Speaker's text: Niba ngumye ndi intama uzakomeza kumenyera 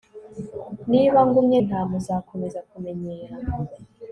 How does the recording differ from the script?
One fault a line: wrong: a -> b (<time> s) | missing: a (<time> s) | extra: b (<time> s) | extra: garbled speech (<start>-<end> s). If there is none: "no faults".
missing: ndi (1.6 s)